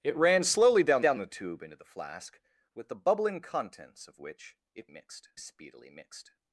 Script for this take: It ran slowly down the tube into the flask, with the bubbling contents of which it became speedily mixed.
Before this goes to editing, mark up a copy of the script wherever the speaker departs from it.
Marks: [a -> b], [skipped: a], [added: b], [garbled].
It ran slowly down [added: down] the tube into the flask, with the bubbling contents of which it [became -> mixed] speedily mixed.